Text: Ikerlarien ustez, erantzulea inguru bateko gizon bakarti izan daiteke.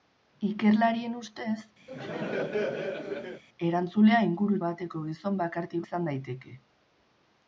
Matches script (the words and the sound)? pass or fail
fail